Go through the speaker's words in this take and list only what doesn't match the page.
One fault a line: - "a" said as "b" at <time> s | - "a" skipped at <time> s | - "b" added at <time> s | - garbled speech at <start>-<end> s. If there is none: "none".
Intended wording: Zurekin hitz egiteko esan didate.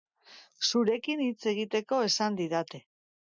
none